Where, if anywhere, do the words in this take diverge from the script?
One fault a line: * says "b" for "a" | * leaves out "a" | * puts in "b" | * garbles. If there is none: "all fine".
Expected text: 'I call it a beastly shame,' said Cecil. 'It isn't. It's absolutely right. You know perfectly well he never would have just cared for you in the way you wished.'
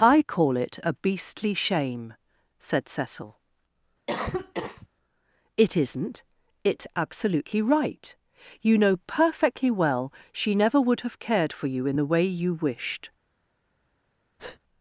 * says "she" for "he"
* leaves out "just"